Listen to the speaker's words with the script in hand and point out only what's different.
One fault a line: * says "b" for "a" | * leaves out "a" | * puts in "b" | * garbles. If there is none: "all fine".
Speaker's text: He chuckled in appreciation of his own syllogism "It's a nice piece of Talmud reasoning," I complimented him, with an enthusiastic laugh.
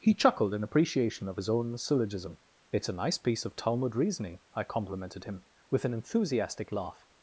all fine